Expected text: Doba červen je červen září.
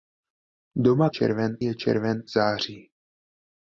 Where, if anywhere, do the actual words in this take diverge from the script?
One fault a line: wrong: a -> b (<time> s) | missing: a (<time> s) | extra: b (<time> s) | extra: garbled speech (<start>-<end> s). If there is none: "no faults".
no faults